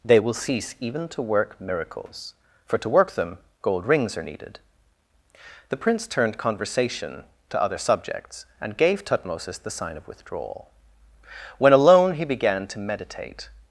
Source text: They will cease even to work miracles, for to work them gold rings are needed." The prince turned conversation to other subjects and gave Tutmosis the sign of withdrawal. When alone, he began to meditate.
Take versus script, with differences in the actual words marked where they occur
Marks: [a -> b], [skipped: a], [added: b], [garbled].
They will cease even to work miracles, for to work them gold rings are needed." The prince turned conversation to other subjects and gave Tutmosis the sign of withdrawal. When alone, he began to meditate.